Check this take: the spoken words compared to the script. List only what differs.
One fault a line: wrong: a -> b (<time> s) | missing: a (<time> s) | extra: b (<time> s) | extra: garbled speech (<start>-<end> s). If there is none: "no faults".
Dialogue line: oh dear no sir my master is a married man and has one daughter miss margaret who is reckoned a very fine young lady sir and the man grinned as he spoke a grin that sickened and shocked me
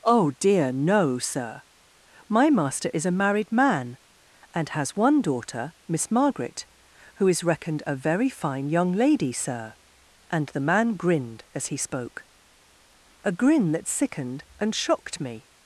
no faults